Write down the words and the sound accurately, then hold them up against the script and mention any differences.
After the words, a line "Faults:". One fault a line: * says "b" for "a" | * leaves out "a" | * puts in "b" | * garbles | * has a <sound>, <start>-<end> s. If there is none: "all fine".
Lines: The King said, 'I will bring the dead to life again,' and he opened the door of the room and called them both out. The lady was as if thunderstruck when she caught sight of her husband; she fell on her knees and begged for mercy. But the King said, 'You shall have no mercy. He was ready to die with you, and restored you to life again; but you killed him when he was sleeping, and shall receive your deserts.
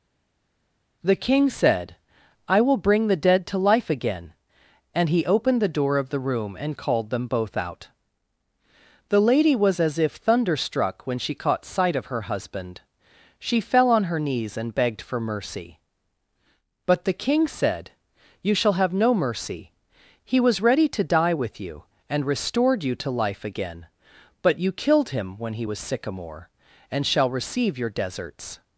The King said, 'I will bring the dead to life again,' and he opened the door of the room and called them both out. The lady was as if thunderstruck when she caught sight of her husband; she fell on her knees and begged for mercy. But the King said, 'You shall have no mercy. He was ready to die with you, and restored you to life again; but you killed him when he was sycamore, and shall receive your deserts.
Faults:
* says "sycamore" for "sleeping"